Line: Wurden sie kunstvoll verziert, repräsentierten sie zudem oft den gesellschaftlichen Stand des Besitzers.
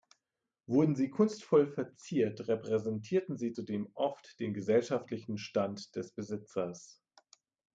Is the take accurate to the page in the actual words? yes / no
yes